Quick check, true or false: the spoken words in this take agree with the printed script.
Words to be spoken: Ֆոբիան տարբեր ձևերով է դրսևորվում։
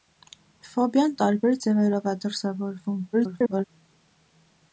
false